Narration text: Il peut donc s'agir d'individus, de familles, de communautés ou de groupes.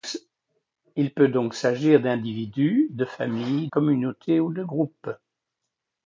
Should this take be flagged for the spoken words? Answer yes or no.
yes